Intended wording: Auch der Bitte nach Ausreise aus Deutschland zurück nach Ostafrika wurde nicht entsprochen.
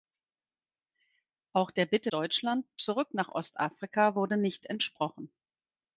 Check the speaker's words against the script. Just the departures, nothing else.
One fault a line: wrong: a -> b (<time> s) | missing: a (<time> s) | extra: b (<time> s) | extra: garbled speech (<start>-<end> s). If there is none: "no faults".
missing: nach Ausreise aus (2.1 s)